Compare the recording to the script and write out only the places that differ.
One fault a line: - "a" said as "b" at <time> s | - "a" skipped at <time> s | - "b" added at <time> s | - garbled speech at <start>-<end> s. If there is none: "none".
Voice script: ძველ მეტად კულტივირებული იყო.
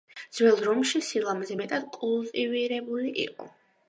- "რომში სილამაზე" added at 0.7 s